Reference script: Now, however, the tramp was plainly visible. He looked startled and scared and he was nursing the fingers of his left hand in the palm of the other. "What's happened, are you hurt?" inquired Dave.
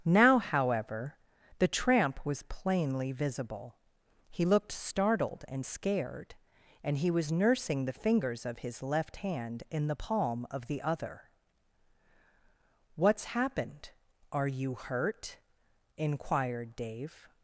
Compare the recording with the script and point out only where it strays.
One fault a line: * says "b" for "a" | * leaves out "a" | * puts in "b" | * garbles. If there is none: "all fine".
all fine